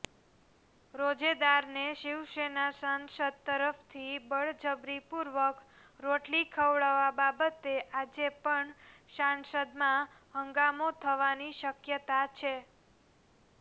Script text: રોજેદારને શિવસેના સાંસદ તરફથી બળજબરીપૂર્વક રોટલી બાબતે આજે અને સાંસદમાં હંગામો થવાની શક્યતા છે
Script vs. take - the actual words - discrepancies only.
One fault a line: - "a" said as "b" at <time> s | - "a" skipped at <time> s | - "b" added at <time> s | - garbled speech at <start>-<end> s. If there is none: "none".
- "ખવડાવવા" added at 6.5 s
- "અને" said as "પણ" at 8.4 s